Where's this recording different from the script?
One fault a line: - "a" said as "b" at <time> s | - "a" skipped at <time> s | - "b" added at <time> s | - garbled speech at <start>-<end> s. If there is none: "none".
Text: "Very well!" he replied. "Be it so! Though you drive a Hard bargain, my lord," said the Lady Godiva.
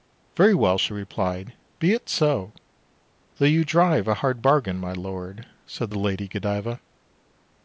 - "he" said as "she" at 0.8 s